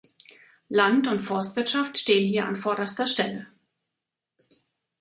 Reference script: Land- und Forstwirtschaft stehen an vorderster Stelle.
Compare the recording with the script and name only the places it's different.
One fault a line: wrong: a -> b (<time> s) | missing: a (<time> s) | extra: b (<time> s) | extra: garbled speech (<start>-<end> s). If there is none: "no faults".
extra: hier (2.3 s)